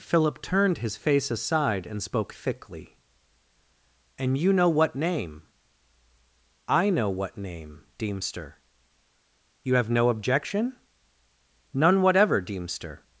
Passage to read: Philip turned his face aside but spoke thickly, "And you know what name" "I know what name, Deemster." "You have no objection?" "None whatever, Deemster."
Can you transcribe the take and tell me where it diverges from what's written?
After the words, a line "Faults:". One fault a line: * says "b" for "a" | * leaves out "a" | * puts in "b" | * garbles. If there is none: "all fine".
Philip turned his face aside and spoke thickly, "And you know what name" "I know what name, Deemster." "You have no objection?" "None whatever, Deemster."
Faults:
* says "and" for "but"